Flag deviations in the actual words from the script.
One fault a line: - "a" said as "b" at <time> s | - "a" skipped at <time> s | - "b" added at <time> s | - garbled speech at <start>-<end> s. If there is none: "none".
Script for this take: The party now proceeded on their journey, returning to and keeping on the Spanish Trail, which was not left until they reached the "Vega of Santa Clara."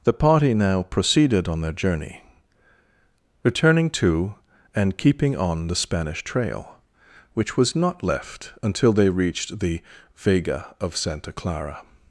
none